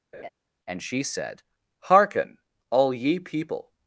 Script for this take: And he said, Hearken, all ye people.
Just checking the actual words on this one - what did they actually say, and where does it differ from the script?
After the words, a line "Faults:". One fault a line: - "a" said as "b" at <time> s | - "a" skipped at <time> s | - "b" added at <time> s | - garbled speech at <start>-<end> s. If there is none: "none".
And she said, Hearken, all ye people.
Faults:
- "he" said as "she" at 0.8 s